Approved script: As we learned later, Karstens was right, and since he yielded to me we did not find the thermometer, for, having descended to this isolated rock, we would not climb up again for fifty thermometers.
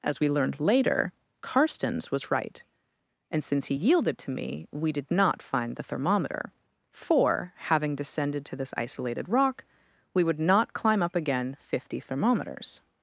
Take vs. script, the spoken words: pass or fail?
fail